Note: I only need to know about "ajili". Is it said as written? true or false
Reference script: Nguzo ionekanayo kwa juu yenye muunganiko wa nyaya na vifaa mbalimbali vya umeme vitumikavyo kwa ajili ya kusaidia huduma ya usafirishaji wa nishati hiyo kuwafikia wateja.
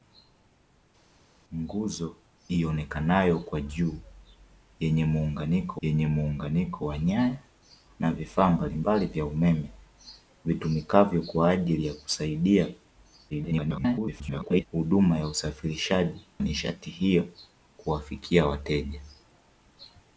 true